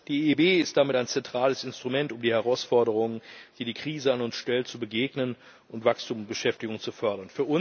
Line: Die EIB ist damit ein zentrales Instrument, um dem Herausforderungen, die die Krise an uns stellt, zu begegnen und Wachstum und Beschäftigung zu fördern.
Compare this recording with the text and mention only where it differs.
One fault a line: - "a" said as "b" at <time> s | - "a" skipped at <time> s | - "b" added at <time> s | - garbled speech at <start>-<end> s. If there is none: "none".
- "dem" said as "den" at 2.2 s